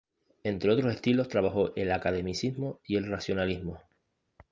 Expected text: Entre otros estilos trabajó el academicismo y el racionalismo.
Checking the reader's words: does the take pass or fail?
pass